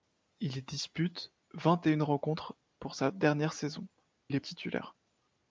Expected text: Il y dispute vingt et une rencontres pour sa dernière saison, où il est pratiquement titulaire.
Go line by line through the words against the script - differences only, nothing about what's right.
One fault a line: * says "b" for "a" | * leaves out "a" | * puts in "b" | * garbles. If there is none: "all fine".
* leaves out "où"
* leaves out "pratiquement"